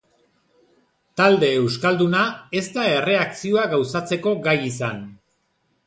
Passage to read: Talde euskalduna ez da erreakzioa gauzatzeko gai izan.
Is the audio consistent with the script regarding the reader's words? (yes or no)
yes